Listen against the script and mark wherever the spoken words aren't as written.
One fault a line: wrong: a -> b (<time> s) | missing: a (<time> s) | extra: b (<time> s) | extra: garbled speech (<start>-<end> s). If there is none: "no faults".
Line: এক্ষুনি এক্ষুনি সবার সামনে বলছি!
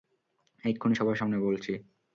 missing: এক্ষুনি (0.9 s)